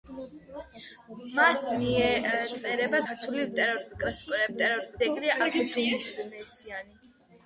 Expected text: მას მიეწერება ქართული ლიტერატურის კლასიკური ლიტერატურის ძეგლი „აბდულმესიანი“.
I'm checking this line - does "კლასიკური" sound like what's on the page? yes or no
yes